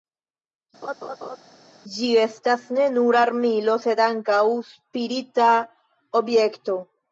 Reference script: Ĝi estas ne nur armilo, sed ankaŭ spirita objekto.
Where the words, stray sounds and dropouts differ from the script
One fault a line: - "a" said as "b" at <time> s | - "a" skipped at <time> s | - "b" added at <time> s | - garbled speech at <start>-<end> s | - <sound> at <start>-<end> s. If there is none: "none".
- laugh at 0.8-1.4 s